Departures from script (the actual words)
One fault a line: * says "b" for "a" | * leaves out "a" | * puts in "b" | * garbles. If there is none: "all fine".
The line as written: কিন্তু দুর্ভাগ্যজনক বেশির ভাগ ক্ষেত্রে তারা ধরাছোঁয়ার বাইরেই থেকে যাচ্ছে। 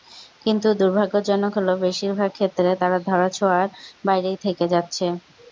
* puts in "হলো"